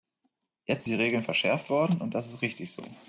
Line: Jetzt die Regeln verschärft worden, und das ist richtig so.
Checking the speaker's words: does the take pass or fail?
pass